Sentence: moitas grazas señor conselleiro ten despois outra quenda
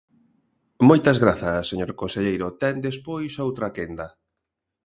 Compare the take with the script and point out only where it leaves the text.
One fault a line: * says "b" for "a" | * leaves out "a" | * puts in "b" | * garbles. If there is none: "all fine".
all fine